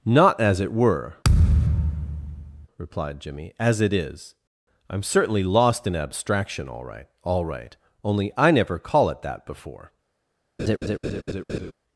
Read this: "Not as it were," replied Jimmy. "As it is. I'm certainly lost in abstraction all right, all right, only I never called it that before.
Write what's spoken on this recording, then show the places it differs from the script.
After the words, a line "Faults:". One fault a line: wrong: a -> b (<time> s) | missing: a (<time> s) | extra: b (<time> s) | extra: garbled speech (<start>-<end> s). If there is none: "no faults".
"Not as it were," replied Jimmy. "As it is. I'm certainly lost in abstraction all right, all right, only I never call it that before.
Faults:
wrong: called -> call (8.8 s)